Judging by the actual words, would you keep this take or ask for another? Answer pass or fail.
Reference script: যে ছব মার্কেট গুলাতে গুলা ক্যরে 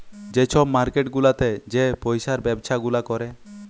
fail